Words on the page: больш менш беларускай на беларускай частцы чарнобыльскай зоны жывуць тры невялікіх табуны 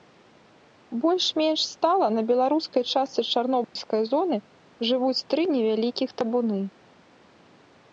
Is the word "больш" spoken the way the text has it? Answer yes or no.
yes